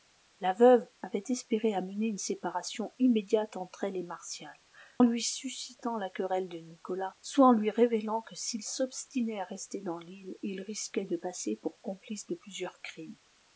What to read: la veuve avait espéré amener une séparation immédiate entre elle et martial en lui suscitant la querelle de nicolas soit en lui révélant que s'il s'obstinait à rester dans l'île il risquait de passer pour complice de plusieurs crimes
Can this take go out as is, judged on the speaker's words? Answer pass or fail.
pass